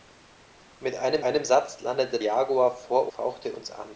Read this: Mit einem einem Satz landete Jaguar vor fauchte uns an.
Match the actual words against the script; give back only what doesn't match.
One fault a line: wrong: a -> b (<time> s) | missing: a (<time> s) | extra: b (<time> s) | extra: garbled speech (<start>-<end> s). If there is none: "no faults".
no faults